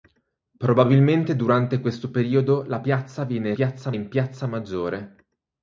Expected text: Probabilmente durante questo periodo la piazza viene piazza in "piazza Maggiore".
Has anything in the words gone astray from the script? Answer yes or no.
no